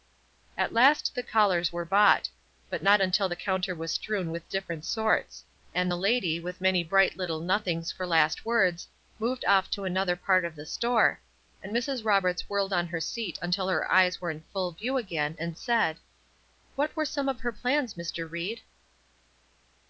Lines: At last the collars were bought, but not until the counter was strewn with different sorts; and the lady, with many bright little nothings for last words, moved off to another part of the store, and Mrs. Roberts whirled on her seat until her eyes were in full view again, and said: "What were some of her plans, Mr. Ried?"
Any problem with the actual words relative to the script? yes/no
no